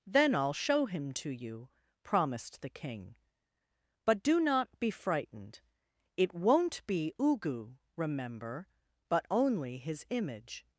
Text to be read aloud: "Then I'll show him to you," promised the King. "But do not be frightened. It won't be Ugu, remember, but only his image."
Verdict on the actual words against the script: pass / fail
pass